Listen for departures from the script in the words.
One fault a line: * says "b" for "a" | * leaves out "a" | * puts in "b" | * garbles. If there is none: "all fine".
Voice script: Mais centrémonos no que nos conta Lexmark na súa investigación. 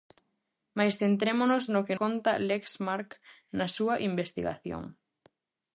* leaves out "nos"